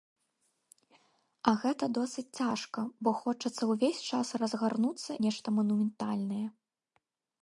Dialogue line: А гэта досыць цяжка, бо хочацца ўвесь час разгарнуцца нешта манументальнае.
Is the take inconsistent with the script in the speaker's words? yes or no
no